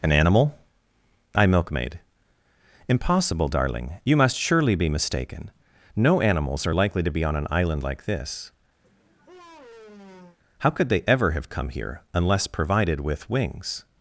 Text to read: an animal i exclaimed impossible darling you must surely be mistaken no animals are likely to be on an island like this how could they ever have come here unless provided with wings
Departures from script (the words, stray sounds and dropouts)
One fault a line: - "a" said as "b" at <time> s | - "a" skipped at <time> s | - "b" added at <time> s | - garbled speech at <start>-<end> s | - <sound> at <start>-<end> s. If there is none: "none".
- "exclaimed" said as "milkmaid" at 1.4 s
- sigh at 8.8-10.4 s